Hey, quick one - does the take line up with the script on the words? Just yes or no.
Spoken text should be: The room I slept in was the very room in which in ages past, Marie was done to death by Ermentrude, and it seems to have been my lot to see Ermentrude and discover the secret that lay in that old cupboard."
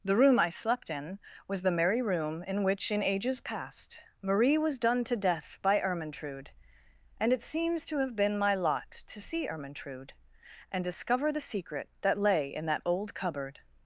no